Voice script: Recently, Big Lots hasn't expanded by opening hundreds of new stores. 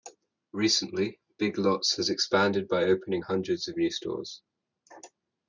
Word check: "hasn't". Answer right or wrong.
wrong